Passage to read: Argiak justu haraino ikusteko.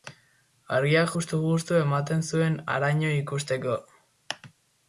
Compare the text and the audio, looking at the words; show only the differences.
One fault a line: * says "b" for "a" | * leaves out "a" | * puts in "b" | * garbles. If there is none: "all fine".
* puts in "justu ematen zuen"